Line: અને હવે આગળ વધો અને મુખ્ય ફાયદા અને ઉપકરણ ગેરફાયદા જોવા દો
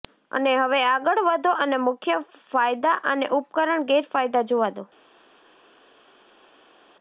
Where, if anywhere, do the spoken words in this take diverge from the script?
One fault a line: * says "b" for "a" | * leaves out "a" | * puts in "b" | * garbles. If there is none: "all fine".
all fine